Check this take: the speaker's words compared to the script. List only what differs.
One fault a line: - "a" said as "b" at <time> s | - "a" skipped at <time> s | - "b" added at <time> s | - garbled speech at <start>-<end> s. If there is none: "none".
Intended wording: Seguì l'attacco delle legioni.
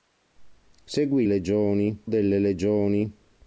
- "l'attacco" said as "legioni" at 1.2 s